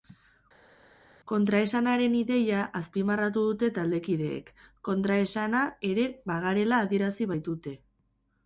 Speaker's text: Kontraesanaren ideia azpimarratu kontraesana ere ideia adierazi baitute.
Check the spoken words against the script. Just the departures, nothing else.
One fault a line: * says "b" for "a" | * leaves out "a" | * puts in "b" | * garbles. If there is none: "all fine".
* puts in "dute taldekideek"
* says "bagarela" for "ideia"